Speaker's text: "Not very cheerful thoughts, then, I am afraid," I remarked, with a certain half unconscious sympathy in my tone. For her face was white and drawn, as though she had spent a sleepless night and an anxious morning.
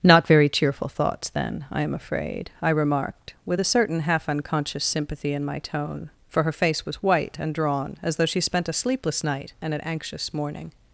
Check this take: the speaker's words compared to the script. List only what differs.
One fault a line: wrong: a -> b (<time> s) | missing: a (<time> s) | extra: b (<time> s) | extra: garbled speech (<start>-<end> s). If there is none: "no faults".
missing: had (8.4 s)